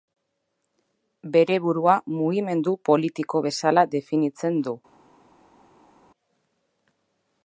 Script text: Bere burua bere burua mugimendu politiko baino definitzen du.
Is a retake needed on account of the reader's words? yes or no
yes